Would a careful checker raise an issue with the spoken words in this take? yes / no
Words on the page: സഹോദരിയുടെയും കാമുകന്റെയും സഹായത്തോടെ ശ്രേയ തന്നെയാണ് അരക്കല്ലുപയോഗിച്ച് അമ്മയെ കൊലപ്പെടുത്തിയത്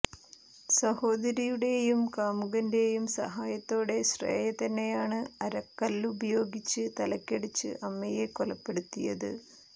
yes